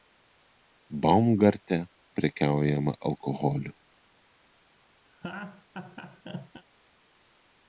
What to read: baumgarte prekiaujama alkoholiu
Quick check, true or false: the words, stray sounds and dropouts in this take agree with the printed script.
false